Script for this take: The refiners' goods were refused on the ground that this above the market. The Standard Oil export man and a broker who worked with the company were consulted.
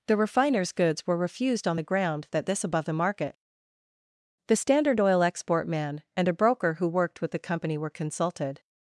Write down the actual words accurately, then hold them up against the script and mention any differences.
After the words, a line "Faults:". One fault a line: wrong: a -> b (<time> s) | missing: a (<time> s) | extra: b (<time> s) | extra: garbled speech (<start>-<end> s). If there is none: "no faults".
The refiners' goods were refused on the ground that this above the market. The Standard Oil export man and a broker who worked with the company were consulted.
Faults:
no faults